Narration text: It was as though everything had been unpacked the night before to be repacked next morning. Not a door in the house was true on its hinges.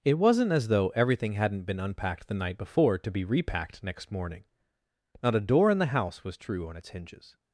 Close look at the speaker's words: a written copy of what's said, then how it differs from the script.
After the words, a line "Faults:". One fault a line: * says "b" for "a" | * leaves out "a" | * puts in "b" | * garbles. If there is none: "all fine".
It wasn't as though everything hadn't been unpacked the night before to be repacked next morning. Not a door in the house was true on its hinges.
Faults:
* says "wasn't" for "was"
* says "hadn't" for "had"